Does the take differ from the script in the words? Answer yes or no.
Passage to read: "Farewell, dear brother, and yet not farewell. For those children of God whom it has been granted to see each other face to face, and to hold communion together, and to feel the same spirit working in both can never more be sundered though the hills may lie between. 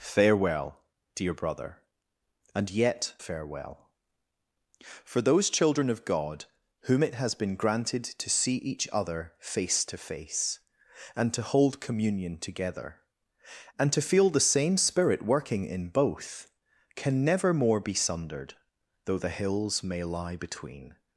yes